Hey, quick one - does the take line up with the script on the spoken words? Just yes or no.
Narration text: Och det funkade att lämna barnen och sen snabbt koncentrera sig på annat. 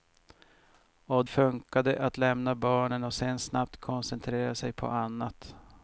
no